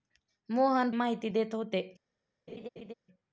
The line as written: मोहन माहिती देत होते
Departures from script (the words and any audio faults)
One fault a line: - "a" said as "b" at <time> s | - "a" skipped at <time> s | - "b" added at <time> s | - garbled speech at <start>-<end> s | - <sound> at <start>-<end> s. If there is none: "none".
- laugh at 2.5-2.9 s